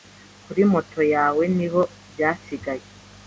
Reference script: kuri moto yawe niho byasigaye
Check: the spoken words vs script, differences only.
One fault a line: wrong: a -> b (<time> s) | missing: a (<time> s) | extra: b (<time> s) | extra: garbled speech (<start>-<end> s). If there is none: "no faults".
no faults